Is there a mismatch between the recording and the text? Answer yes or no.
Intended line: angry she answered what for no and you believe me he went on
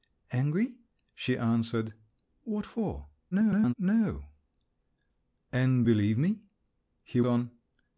yes